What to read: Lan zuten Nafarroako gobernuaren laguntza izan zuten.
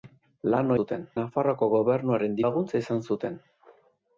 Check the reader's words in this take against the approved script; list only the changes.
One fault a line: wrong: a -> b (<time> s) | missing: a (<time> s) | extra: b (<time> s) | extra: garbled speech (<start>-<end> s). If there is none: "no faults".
no faults